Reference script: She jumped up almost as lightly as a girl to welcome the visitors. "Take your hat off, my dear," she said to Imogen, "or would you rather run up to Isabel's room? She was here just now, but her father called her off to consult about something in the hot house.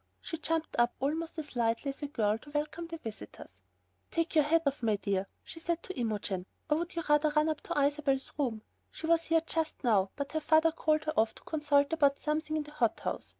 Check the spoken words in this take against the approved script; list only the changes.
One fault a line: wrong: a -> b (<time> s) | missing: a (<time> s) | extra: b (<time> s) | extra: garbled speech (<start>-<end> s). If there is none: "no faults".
no faults